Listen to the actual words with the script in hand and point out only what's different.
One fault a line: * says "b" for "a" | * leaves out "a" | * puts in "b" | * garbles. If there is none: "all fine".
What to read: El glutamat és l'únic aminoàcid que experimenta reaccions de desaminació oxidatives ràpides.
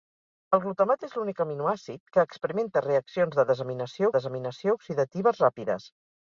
* puts in "desaminació"